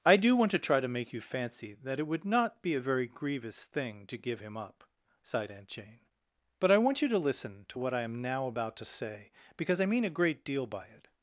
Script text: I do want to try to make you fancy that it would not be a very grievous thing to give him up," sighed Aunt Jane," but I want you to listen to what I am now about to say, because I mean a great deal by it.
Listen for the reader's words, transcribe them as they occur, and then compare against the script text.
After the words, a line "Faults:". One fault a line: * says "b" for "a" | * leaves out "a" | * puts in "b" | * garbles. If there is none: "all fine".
I do want to try to make you fancy that it would not be a very grievous thing to give him up," sighed Aunt Jane," but I want you to listen to what I am now about to say, because I mean a great deal by it.
Faults:
all fine